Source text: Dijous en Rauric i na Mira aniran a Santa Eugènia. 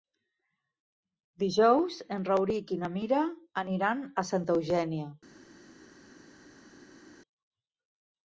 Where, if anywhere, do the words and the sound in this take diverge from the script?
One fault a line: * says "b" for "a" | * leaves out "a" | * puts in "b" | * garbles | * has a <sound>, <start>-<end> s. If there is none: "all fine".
all fine